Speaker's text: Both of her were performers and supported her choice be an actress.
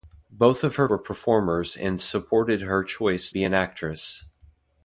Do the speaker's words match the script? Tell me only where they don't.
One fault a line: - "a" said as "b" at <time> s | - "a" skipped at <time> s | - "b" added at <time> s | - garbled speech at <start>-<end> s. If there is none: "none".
none